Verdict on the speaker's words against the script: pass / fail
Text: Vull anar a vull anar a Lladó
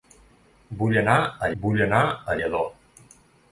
pass